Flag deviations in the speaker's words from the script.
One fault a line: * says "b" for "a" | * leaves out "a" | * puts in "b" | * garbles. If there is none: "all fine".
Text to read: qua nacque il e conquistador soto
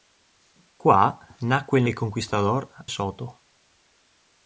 all fine